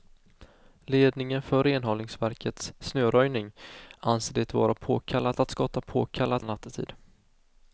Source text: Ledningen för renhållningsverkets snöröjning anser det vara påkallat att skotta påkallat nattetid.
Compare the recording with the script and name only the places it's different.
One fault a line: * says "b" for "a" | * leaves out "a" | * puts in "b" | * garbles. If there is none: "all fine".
all fine